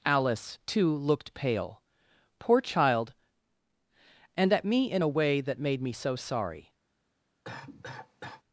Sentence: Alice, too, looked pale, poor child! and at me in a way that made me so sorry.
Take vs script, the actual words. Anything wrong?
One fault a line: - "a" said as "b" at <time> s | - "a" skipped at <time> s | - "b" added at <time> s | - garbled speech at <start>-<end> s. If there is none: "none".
none